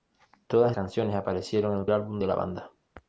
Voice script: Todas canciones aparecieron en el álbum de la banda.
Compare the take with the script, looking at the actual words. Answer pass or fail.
pass